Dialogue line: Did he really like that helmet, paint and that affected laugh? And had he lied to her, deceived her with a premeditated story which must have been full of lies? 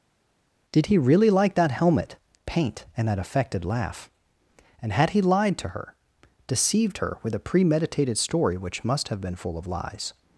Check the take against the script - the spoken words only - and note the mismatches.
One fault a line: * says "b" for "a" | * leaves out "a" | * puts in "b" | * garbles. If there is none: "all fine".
all fine